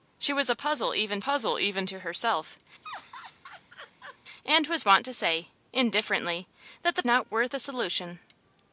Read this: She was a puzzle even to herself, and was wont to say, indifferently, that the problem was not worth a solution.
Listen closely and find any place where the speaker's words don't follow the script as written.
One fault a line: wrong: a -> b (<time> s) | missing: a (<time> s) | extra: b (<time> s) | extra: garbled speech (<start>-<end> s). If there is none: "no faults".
extra: puzzle even (1.2 s)
missing: problem was (7.0 s)